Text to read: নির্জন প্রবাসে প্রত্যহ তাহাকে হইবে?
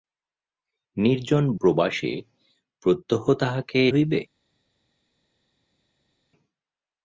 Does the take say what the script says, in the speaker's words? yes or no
yes